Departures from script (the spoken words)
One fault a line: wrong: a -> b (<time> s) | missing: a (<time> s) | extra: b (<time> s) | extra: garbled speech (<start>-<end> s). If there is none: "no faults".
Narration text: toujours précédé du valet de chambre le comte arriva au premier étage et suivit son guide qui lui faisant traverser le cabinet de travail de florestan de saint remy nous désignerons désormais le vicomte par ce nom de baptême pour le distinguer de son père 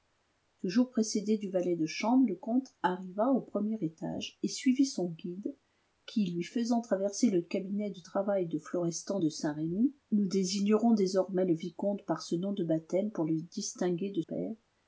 missing: son (14.2 s)